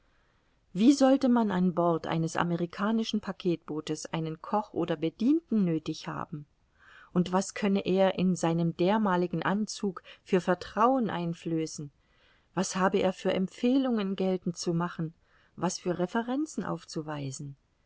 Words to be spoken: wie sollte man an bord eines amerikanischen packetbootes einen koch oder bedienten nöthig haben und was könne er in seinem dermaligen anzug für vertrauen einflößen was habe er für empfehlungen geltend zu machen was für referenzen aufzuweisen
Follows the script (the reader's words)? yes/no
yes